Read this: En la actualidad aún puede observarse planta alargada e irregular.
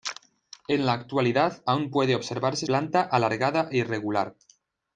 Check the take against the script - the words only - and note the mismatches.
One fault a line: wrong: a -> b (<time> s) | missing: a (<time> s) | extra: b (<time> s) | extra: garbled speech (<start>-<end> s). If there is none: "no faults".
no faults